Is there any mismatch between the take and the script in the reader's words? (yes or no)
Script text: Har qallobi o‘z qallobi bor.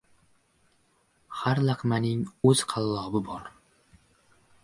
yes